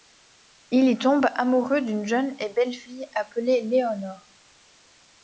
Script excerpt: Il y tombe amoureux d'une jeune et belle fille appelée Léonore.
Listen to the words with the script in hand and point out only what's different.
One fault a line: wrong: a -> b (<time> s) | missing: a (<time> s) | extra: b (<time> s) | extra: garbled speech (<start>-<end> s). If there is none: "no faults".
no faults